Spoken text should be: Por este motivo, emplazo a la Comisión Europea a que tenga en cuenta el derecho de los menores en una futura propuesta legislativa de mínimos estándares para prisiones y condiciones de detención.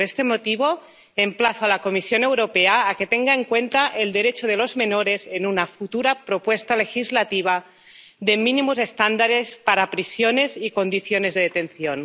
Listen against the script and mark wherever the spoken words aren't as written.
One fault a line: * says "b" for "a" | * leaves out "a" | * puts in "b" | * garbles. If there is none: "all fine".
all fine